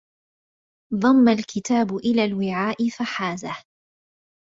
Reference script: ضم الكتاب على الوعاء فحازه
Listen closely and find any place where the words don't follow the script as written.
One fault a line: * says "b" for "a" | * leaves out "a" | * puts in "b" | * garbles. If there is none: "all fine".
* says "إلى" for "على"